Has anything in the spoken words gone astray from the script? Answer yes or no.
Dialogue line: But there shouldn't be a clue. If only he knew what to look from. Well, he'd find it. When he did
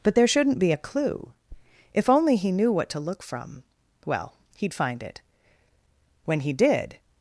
no